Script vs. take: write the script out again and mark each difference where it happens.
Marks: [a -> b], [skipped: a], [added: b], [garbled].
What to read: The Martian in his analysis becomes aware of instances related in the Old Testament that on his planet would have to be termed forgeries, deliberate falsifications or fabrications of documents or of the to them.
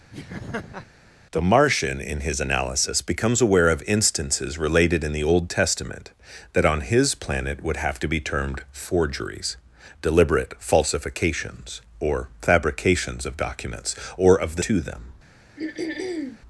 The Martian in his analysis becomes aware of instances related in the Old Testament that on his planet would have to be termed forgeries, deliberate falsifications or fabrications of documents or of the to them.